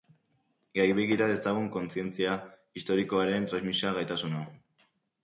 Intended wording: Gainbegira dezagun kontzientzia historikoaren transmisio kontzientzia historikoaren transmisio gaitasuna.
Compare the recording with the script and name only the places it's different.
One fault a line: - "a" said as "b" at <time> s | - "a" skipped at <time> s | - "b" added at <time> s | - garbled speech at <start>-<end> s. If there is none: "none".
- "kontzientzia historikoaren transmisio" skipped at 3.9 s